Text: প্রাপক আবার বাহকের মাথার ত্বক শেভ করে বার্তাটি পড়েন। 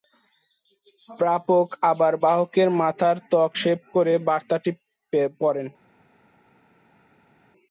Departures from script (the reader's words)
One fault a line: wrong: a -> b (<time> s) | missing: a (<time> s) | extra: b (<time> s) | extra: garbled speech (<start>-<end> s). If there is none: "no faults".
no faults